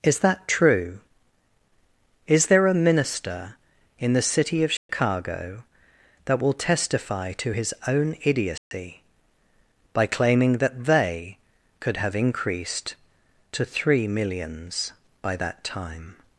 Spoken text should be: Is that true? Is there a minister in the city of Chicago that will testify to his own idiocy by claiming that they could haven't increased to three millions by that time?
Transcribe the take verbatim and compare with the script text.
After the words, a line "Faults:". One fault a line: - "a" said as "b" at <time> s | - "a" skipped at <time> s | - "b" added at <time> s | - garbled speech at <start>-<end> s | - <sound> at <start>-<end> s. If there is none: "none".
Is that true? Is there a minister in the city of Chicago that will testify to his own idiocy by claiming that they could have increased to three millions by that time?
Faults:
- dropout at 4.8-4.9 s
- dropout at 8.6-8.7 s
- "haven't" said as "have" at 12.0 s